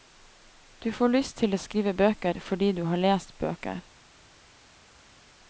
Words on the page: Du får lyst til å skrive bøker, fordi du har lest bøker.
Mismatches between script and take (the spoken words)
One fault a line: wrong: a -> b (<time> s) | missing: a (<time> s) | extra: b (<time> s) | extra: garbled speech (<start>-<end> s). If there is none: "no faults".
no faults